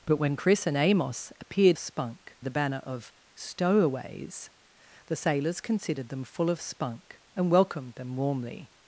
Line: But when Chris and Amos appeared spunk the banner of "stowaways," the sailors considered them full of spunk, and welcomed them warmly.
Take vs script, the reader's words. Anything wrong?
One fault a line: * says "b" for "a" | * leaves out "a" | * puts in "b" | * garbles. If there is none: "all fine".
all fine